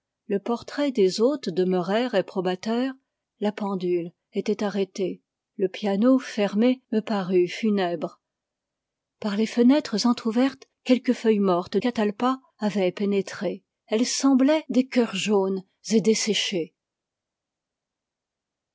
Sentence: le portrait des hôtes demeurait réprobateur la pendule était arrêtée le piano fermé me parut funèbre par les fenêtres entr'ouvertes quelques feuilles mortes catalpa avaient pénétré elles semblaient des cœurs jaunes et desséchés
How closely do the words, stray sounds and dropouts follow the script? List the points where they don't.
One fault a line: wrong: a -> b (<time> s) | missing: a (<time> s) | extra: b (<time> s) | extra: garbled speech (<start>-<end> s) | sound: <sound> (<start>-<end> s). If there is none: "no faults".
no faults